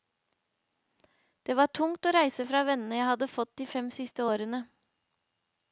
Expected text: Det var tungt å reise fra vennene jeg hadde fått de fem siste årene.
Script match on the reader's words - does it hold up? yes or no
yes